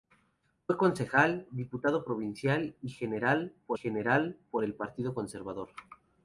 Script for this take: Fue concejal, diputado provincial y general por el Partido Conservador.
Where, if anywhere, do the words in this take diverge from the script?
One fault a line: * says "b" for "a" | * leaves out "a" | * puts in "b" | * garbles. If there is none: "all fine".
* puts in "general por"